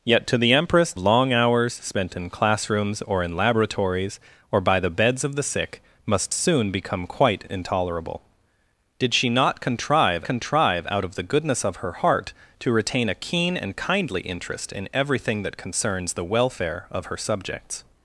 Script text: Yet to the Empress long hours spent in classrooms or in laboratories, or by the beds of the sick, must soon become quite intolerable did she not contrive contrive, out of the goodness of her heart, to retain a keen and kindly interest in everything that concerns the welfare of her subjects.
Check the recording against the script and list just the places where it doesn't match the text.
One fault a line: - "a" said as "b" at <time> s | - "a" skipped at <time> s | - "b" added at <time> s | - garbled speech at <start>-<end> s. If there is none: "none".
none